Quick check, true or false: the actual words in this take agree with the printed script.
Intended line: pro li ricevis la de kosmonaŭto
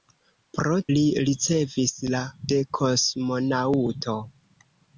true